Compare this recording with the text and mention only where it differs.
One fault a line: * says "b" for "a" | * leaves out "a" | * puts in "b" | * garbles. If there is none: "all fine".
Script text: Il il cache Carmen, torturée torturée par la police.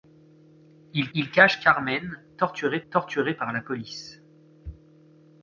all fine